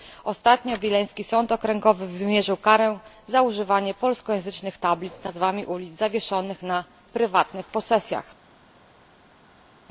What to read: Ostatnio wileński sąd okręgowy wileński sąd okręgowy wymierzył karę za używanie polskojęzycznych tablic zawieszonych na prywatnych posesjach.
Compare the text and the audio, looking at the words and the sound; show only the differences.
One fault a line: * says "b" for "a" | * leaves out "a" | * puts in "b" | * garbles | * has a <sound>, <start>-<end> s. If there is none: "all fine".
* leaves out "wileński sąd okręgowy"
* puts in "z nazwami ulic"